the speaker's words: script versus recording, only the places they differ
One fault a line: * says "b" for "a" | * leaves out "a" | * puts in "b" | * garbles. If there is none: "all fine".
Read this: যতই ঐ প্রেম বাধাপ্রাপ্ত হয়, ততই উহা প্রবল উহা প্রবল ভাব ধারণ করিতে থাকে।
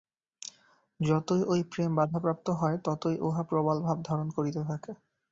* leaves out "উহা প্রবল"